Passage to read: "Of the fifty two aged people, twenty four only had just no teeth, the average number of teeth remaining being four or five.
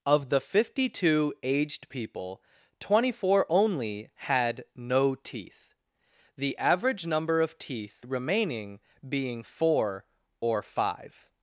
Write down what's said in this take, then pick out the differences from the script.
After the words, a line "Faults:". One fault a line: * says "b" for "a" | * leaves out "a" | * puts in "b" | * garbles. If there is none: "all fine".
"Of the fifty two aged people, twenty four only had no teeth, the average number of teeth remaining being four or five.
Faults:
* leaves out "just"